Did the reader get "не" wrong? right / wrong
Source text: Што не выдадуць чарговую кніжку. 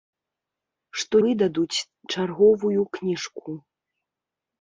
wrong